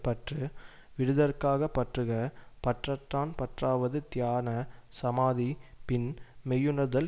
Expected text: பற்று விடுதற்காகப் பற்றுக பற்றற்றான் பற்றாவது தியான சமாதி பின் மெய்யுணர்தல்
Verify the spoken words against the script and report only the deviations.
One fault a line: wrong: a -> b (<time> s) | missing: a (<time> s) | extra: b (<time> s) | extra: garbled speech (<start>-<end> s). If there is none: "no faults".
no faults